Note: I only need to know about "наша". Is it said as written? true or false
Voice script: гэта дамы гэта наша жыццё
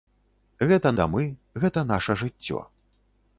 true